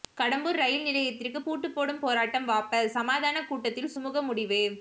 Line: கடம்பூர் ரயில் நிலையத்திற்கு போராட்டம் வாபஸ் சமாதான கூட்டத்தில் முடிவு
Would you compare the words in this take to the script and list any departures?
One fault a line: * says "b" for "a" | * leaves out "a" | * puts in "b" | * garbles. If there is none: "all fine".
* puts in "பூட்டு போடும்"
* puts in "சுமூக"